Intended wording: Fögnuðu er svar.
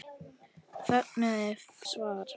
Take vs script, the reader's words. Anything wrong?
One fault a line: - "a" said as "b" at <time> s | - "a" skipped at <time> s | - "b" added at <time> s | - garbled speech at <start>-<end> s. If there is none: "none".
none